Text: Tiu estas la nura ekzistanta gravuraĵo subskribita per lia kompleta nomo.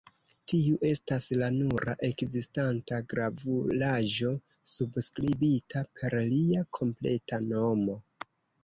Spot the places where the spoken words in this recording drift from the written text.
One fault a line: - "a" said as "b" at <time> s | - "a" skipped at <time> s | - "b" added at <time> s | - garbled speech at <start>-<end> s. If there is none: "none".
none